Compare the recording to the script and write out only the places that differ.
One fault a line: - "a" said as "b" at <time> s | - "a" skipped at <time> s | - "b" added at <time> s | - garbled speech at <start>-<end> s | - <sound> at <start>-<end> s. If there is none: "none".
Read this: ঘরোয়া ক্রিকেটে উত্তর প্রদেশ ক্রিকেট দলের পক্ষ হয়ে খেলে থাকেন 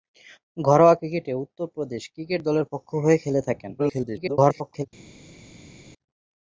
- garbled speech at 3.8-4.9 s